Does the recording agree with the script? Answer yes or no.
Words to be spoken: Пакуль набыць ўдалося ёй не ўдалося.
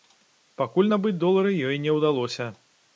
no